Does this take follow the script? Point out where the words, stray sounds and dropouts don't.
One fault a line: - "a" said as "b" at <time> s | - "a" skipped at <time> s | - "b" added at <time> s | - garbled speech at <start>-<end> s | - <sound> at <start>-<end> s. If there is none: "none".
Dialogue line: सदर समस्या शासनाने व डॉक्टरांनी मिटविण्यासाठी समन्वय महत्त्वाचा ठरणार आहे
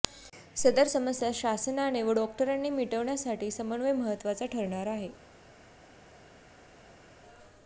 none